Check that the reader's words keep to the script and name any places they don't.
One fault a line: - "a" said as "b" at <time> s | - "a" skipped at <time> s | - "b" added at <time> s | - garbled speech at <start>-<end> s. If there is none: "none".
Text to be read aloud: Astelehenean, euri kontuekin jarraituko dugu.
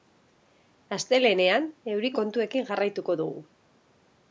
none